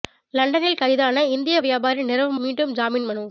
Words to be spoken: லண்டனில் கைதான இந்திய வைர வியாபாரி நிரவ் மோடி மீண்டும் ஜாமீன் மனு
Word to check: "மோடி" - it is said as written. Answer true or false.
false